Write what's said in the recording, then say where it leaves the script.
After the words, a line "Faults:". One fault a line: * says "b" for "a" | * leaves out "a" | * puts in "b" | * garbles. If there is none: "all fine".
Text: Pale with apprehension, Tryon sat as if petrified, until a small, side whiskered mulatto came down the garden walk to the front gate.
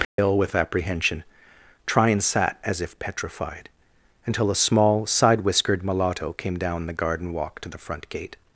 Pale with apprehension, Tryon sat as if petrified, until a small, side whiskered mulatto came down the garden walk to the front gate.
Faults:
all fine